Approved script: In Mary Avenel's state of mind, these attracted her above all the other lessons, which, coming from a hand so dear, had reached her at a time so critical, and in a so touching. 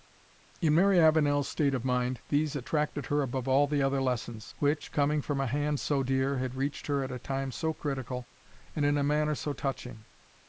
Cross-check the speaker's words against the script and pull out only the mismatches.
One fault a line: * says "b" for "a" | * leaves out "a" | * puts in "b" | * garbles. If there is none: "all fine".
* puts in "manner"